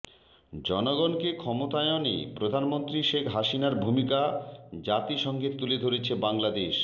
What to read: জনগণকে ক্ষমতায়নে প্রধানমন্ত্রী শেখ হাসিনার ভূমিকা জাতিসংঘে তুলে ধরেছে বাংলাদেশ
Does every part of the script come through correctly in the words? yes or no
yes